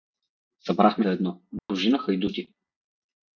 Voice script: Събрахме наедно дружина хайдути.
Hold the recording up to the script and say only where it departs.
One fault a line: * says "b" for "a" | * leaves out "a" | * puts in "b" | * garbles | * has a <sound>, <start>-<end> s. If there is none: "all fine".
* has a dropout, 1.6-1.7 s